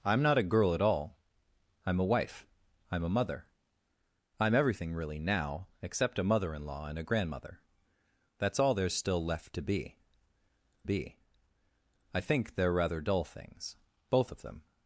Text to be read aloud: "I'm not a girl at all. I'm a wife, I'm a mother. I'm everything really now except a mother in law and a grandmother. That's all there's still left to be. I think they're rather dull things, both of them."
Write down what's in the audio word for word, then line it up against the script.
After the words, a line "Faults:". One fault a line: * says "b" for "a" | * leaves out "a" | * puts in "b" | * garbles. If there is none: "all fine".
"I'm not a girl at all. I'm a wife, I'm a mother. I'm everything really now except a mother in law and a grandmother. That's all there's still left to be be. I think they're rather dull things, both of them."
Faults:
* puts in "be"